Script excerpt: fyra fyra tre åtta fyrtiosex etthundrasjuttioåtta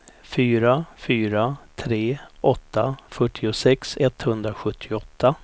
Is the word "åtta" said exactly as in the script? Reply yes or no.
yes